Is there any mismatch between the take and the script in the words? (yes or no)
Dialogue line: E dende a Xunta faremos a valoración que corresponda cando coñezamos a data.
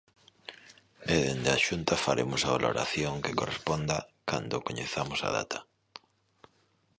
no